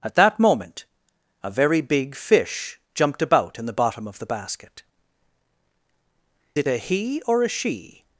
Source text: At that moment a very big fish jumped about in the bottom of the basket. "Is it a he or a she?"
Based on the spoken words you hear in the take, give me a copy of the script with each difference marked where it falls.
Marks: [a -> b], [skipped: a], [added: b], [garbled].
At that moment a very big fish jumped about in the bottom of the basket. [skipped: "Is] it a he or a she?"